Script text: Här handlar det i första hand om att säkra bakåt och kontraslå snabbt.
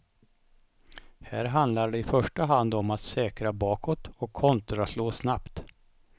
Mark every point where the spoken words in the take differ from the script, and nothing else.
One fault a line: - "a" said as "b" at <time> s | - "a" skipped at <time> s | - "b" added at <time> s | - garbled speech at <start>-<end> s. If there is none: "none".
none